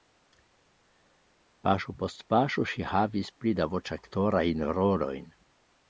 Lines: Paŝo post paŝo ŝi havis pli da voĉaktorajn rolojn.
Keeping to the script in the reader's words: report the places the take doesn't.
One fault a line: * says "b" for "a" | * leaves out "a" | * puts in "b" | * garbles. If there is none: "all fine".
all fine